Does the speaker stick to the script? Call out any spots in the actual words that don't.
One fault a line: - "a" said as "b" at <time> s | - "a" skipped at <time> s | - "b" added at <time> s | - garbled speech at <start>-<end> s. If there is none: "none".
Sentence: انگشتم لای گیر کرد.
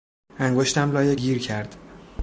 none